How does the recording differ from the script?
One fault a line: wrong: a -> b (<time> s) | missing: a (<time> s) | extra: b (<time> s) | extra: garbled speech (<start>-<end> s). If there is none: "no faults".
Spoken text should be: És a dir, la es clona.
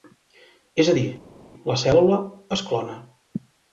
extra: cèl·lula (1.8 s)